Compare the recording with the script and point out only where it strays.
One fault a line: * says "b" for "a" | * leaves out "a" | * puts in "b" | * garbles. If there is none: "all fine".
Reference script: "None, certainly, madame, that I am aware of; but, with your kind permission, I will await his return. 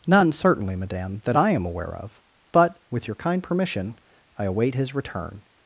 * leaves out "will"